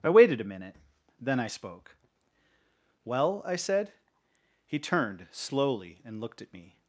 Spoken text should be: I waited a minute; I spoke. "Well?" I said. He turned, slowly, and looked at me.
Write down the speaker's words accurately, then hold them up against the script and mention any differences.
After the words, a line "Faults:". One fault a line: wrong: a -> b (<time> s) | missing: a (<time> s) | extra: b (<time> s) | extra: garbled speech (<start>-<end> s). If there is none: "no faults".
I waited a minute; then I spoke. "Well?" I said. He turned, slowly, and looked at me.
Faults:
extra: then (1.2 s)